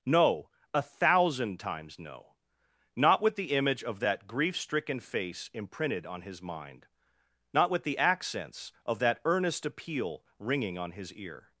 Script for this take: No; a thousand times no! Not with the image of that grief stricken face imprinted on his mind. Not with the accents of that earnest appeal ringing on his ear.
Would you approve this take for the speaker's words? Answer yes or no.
yes